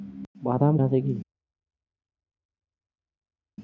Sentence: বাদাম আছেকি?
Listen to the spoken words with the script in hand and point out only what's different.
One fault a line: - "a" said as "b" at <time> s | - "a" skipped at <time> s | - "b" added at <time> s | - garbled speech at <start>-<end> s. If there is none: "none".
none